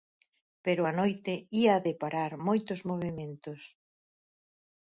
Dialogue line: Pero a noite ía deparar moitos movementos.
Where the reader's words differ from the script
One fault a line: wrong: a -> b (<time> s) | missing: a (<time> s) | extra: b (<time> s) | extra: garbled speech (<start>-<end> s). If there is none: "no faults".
no faults